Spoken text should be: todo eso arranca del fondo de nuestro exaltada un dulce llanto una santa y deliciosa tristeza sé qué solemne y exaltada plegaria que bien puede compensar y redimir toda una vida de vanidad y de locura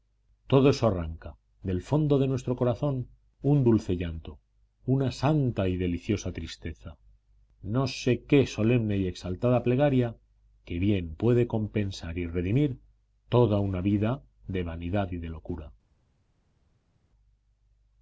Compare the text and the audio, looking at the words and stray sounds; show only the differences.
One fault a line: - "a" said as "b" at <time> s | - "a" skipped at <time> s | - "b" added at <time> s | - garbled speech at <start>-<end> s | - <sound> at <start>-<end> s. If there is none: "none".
- "exaltada" said as "corazón" at 2.5 s
- "no" added at 7.6 s